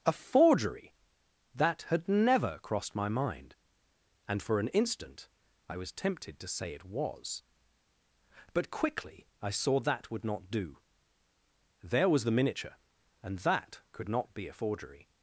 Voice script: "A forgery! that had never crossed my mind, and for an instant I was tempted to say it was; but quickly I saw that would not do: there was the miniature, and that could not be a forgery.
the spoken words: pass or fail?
pass